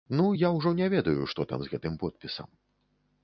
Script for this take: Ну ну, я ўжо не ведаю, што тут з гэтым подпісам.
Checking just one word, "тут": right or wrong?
wrong